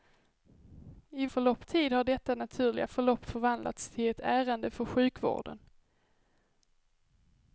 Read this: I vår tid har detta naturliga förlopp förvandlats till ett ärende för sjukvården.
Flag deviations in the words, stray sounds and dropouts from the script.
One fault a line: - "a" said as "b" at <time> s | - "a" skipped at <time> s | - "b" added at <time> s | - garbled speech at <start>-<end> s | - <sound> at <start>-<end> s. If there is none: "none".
- "vår" said as "förlopp" at 1.3 s